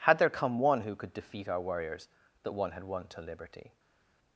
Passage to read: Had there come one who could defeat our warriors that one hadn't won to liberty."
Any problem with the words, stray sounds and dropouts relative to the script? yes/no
yes